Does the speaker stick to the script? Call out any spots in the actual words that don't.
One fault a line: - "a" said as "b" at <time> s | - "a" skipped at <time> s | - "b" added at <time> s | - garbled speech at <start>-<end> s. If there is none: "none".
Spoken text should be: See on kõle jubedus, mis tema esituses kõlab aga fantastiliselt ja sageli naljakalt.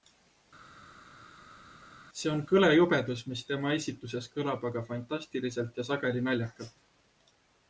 none